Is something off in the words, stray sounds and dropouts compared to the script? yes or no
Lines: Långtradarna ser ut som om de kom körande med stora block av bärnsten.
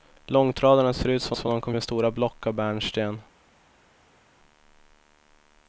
yes